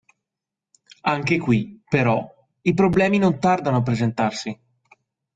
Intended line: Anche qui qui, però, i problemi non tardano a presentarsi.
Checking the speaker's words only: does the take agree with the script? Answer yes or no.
no